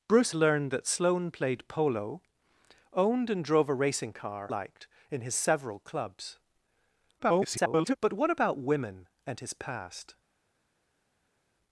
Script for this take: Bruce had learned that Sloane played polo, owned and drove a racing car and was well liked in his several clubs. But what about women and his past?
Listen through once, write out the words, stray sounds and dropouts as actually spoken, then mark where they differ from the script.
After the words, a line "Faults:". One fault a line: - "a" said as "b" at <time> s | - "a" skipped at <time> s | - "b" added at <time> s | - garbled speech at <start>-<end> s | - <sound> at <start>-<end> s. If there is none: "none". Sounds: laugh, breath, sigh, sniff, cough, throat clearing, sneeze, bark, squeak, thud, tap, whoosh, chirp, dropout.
Bruce learned that Sloane played polo, owned and drove a racing car liked in his several clubs. [garbled] But what about women and his past?
Faults:
- "had" skipped at 0.3 s
- "and was well" skipped at 4.5 s
- garbled speech at 7.2-7.9 s